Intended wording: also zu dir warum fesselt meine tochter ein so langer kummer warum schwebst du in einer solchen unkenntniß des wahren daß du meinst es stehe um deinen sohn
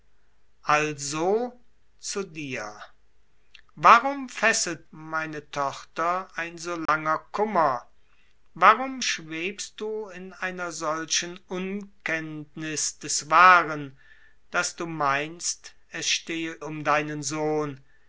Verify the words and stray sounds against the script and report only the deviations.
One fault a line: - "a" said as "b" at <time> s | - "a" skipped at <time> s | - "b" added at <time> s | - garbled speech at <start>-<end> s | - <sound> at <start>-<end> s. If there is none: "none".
- dropout at 6.9-6.9 s